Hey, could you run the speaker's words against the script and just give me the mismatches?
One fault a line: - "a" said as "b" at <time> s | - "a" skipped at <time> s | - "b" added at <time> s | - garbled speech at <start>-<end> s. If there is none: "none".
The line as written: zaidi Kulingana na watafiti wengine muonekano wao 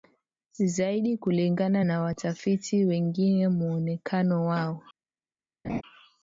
none